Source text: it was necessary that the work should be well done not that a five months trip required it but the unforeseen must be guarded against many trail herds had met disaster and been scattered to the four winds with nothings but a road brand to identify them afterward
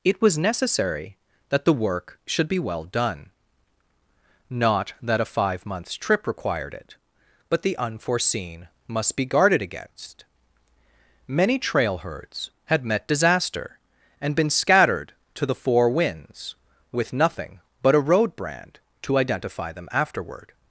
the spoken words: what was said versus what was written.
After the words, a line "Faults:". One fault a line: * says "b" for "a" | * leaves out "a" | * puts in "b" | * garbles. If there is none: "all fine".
it was necessary that the work should be well done not that a five months trip required it but the unforeseen must be guarded against many trail herds had met disaster and been scattered to the four winds with nothing but a road brand to identify them afterward
Faults:
* says "nothing" for "nothings"